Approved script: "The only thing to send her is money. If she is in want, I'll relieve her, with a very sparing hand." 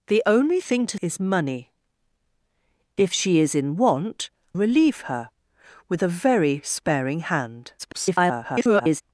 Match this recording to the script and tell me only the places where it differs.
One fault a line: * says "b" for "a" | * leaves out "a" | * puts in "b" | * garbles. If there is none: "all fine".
* leaves out "send her"
* leaves out "I'll"
* garbles